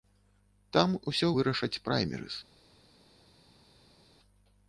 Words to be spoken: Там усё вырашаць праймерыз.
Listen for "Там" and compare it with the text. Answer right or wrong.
right